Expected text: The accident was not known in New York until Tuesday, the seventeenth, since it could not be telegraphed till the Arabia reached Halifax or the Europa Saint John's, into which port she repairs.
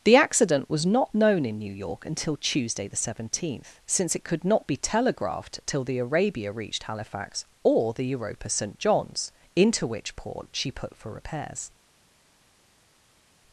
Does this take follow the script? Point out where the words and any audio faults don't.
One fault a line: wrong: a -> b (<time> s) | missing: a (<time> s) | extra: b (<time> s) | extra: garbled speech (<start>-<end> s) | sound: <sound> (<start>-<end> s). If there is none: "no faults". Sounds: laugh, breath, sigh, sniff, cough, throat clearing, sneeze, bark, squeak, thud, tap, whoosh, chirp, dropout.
extra: put for (10.7 s)